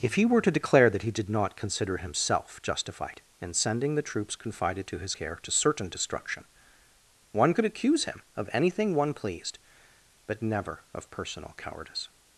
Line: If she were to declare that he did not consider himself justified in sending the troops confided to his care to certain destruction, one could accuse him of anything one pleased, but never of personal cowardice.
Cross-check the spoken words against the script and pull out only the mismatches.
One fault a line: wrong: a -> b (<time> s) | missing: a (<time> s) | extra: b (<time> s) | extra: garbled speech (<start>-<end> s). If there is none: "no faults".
wrong: she -> he (0.1 s)